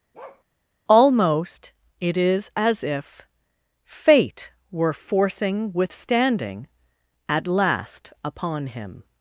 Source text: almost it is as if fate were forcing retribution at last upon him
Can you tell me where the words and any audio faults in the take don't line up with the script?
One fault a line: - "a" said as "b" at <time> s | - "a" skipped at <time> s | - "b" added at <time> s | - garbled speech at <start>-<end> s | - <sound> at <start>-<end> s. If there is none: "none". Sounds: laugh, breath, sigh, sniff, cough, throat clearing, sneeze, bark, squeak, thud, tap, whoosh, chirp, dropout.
- bark at 0.1-0.4 s
- "retribution" said as "withstanding" at 5.7 s